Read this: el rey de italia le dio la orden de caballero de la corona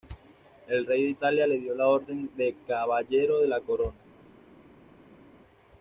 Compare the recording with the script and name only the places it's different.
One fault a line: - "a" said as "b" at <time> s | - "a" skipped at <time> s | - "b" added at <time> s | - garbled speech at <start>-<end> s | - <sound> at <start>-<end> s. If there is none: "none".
none